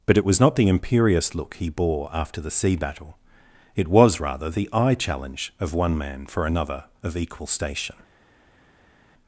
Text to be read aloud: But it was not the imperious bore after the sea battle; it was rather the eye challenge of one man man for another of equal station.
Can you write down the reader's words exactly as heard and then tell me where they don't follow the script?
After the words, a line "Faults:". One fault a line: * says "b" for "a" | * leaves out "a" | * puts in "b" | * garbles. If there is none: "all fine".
But it was not the imperious look he bore after the sea battle; it was rather the eye challenge of one man for another of equal station.
Faults:
* puts in "look he"
* leaves out "man"